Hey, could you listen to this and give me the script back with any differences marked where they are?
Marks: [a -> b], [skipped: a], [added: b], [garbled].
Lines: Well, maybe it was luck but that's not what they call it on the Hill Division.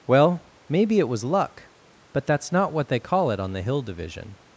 Well, maybe it was luck but that's not what they call it on the Hill Division.